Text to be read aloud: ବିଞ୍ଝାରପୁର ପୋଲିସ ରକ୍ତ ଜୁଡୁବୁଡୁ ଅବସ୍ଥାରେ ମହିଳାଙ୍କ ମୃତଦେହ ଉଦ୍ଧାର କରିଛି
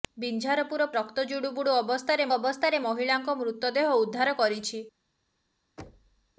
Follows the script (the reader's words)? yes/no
no